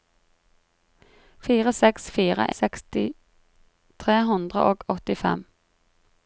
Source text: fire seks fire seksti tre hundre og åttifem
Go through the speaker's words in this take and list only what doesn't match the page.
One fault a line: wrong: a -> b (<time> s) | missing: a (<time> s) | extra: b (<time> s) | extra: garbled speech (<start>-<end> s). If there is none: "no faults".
no faults